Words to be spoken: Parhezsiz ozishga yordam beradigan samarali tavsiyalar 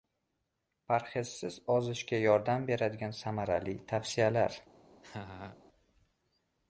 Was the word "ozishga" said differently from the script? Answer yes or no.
no